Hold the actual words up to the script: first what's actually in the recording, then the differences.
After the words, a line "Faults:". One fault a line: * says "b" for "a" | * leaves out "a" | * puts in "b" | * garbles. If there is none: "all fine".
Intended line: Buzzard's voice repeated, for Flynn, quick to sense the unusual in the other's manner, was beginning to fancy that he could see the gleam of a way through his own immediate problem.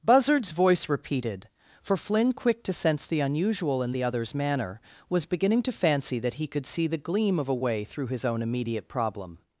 Buzzard's voice repeated, for Flynn, quick to sense the unusual in the other's manner, was beginning to fancy that he could see the gleam of a way through his own immediate problem.
Faults:
all fine